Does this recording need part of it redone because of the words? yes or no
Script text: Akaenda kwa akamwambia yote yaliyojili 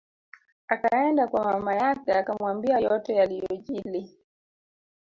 yes